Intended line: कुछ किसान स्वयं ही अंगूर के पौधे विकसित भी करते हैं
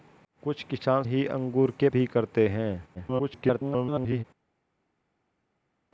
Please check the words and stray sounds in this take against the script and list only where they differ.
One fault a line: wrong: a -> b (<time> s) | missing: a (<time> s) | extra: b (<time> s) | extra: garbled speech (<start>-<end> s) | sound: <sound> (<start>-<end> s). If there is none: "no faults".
missing: स्वयं (1.0 s)
missing: पौधे विकसित (1.9 s)
extra: garbled speech (2.9-4.2 s)